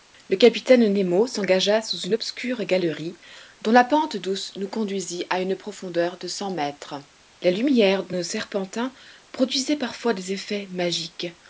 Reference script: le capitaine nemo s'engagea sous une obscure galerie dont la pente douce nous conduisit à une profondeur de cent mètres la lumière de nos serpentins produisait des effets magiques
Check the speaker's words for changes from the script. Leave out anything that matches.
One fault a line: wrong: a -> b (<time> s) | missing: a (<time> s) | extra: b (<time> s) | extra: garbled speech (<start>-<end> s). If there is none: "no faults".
extra: parfois (9.8 s)